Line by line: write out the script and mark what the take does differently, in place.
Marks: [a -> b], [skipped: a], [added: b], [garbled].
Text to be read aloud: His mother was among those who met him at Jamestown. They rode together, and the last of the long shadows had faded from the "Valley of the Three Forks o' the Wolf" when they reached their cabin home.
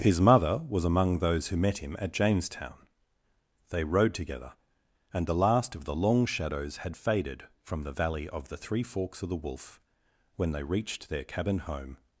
His mother was among those who met him at Jamestown. They rode together, and the last of the long shadows had faded from the "Valley of the Three Forks o' the Wolf" when they reached their cabin home.